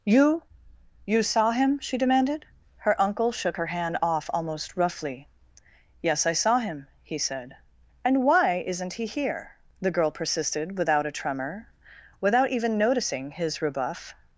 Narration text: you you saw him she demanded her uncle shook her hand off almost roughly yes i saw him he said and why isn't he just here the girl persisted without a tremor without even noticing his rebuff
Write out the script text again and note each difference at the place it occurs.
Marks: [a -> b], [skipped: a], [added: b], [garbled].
you you saw him she demanded her uncle shook her hand off almost roughly yes i saw him he said and why isn't he [skipped: just] here the girl persisted without a tremor without even noticing his rebuff